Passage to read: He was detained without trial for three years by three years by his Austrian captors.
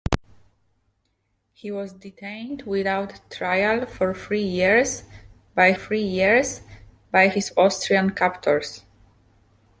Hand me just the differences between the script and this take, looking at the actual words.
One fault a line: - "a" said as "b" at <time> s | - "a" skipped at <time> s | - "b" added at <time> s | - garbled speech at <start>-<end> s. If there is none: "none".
none